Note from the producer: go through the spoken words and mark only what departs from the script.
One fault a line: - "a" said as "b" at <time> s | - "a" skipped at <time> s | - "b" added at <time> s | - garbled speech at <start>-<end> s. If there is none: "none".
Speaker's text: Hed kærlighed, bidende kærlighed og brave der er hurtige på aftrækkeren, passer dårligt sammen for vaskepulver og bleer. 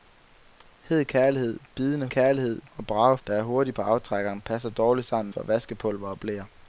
none